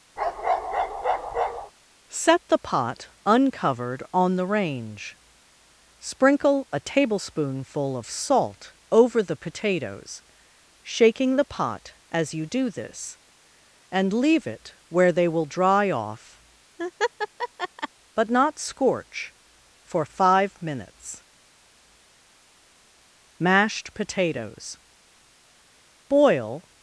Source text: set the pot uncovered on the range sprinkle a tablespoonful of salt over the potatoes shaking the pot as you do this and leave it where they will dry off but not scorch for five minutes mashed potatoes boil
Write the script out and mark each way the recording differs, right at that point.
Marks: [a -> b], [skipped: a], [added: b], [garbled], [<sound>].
[bark] set the pot uncovered on the range sprinkle a tablespoonful of salt over the potatoes shaking the pot as you do this and leave it where they will dry off [laugh] but not scorch for five minutes mashed potatoes boil